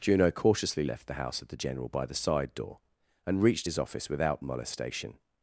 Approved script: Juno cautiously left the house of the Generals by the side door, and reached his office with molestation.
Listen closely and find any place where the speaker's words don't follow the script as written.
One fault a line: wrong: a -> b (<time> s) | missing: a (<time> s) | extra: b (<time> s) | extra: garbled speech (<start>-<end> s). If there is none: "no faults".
wrong: Generals -> General (1.6 s)
wrong: with -> without (4.1 s)